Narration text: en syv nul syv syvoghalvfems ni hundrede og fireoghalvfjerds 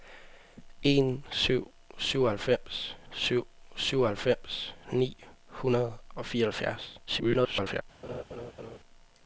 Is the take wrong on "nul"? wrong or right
wrong